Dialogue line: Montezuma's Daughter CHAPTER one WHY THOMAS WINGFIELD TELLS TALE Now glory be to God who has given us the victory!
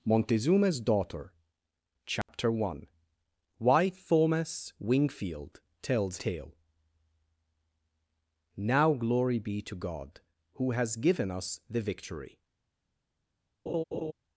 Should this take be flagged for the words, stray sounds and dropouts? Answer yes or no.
yes